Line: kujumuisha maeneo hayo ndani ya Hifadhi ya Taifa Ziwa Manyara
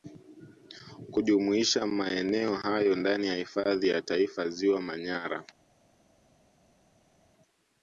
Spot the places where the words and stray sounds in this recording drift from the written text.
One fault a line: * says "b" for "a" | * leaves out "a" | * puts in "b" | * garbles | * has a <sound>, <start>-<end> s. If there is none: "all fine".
all fine